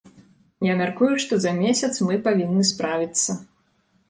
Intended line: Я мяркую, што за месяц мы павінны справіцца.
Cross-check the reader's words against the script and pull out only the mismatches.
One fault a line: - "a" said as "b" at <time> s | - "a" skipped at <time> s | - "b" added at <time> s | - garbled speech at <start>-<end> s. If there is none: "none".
none